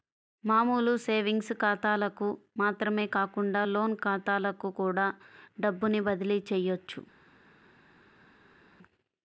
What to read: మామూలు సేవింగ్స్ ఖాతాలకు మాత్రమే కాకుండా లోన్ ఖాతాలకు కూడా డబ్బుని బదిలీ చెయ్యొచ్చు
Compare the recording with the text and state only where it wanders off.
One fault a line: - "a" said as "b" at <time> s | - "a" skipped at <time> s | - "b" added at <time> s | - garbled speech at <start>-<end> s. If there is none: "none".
none